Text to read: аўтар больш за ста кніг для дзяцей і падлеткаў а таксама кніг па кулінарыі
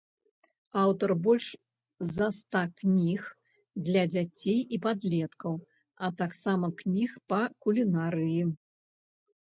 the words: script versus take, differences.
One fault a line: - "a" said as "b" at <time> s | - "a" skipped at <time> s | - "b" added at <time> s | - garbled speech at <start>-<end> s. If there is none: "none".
none